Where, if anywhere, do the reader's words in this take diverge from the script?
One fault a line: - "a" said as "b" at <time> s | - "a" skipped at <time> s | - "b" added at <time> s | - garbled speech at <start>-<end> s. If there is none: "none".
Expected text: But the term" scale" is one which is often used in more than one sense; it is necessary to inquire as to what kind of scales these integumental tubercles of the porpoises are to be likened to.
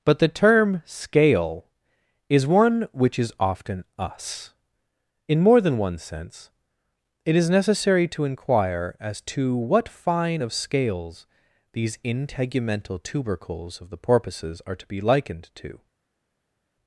- "used" said as "us" at 4.0 s
- "kind" said as "fine" at 9.9 s